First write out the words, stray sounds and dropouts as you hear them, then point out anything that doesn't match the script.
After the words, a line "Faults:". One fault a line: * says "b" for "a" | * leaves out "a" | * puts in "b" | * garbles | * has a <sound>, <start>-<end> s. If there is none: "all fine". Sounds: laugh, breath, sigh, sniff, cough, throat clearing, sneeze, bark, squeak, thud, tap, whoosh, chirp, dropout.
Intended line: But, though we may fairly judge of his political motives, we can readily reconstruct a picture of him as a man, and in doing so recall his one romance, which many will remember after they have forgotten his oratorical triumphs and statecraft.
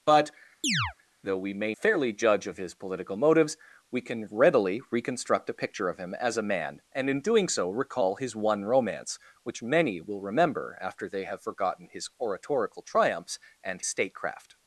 But, though we may fairly judge of his political motives, we can readily reconstruct a picture of him as a man, and in doing so recall his one romance, which many will remember after they have forgotten his oratorical triumphs and statecraft.
Faults:
* has a chirp, 0.6-0.9 s